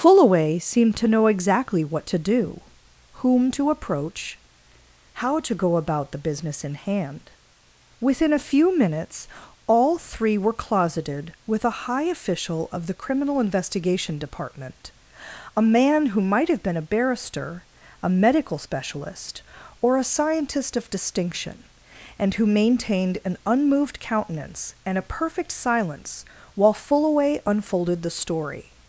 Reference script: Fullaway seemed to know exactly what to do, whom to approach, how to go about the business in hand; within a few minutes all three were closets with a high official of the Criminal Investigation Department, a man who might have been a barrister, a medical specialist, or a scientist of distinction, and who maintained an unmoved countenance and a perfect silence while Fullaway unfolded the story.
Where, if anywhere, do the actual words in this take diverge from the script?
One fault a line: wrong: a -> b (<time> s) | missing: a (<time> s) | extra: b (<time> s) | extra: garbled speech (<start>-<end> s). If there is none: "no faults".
wrong: closets -> closeted (10.5 s)